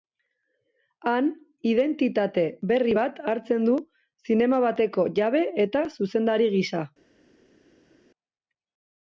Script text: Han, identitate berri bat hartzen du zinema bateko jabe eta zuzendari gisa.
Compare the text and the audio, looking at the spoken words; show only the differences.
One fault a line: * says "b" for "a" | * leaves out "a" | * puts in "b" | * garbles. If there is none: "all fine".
all fine